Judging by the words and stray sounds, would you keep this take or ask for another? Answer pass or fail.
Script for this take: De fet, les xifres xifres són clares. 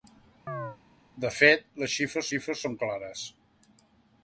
fail